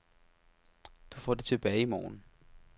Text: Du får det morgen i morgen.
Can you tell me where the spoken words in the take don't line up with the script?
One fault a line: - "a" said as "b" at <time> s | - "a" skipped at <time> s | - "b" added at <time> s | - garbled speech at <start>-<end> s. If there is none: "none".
- "morgen" said as "tilbage" at 1.4 s